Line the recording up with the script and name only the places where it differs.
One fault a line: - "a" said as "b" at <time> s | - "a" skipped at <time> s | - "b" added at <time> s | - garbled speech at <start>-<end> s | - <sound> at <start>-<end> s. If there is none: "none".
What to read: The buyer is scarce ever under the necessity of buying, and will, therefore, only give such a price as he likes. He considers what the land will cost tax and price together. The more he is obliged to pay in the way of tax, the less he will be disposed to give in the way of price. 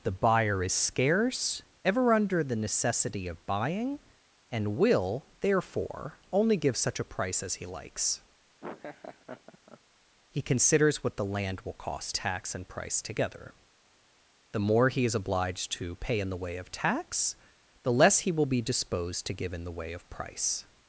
- laugh at 8.6-9.8 s